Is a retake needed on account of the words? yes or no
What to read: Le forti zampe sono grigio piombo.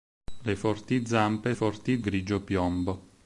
yes